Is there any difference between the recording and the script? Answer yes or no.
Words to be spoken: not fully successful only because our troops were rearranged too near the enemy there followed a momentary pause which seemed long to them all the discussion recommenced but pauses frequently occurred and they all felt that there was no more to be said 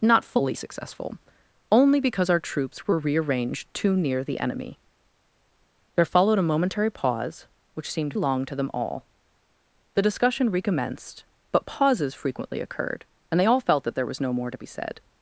no